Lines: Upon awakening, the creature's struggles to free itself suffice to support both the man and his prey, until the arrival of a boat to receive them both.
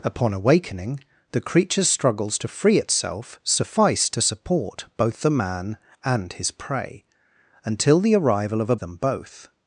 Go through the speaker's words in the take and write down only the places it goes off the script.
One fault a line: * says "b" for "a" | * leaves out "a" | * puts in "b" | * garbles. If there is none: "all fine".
* leaves out "boat to receive"